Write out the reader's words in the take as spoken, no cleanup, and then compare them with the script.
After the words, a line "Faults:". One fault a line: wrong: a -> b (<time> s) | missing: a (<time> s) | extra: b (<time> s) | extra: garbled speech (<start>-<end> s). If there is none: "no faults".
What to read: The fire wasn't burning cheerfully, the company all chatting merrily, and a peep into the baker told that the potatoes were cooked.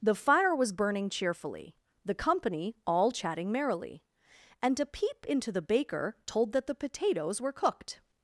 The fire was burning cheerfully, the company all chatting merrily, and a peep into the baker told that the potatoes were cooked.
Faults:
wrong: wasn't -> was (0.6 s)